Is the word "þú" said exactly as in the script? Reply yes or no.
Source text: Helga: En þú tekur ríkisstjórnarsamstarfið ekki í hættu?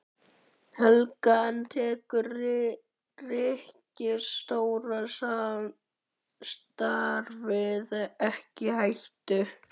no